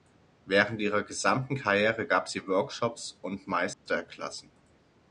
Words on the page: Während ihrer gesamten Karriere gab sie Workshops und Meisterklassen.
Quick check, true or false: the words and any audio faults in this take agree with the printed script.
false